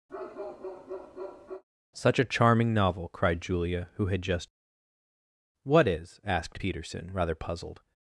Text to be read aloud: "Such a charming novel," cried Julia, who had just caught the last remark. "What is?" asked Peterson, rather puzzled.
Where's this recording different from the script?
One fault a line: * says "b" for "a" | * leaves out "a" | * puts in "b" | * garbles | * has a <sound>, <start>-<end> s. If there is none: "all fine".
* has a bark, 0.1-1.6 s
* leaves out "caught the last remark"